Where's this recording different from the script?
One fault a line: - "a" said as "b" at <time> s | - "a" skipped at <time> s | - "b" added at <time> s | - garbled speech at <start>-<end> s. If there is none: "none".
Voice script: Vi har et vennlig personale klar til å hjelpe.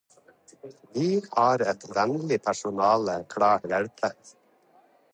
- "til" skipped at 3.6 s